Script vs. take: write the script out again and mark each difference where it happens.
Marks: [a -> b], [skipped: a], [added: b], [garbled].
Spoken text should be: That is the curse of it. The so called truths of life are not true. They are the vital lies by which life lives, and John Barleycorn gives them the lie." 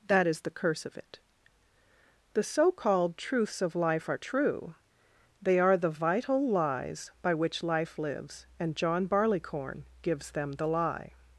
That is the curse of it. The so called truths of life are [skipped: not] true. They are the vital lies by which life lives, and John Barleycorn gives them the lie."